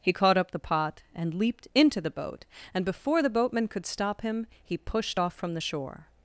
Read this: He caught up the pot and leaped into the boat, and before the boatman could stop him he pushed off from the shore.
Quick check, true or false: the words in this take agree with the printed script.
true